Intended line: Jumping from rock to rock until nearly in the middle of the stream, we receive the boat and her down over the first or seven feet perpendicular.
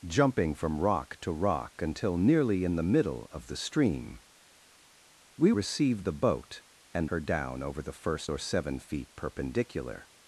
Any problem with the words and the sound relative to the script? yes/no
no